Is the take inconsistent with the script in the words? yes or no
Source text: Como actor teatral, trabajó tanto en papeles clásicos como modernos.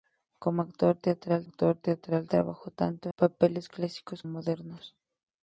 yes